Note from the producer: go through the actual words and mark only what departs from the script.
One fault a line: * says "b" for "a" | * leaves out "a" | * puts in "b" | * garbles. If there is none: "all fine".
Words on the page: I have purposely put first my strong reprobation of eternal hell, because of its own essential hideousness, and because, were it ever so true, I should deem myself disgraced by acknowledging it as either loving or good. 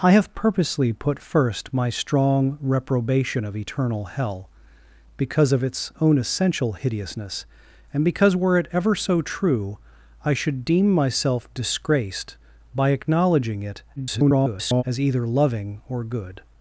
* garbles